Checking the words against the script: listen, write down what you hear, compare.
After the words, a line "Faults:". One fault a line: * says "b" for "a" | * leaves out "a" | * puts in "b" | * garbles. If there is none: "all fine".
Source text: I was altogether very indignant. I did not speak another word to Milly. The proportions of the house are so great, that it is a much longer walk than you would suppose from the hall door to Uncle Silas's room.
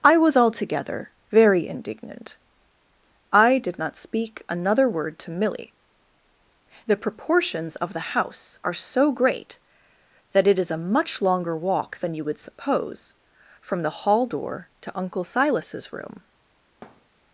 I was altogether very indignant. I did not speak another word to Milly. The proportions of the house are so great, that it is a much longer walk than you would suppose from the hall door to Uncle Silas's room.
Faults:
all fine